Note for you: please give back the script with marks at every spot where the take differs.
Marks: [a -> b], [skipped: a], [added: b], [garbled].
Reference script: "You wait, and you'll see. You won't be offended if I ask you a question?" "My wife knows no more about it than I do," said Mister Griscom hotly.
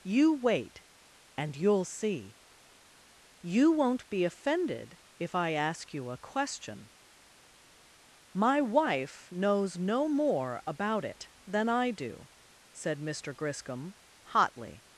"You wait, and you'll see. You won't be offended if I ask you a question?" "My wife knows no more about it than I do," said Mister Griscom hotly.